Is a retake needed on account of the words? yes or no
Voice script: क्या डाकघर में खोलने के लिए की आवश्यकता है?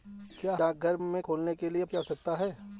no